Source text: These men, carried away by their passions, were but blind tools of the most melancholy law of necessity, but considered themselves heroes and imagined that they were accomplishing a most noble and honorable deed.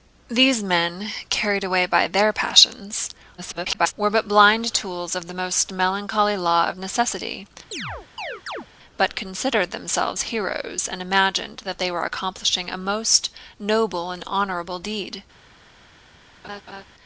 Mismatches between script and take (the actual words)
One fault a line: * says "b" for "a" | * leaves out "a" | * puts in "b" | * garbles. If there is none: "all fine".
* garbles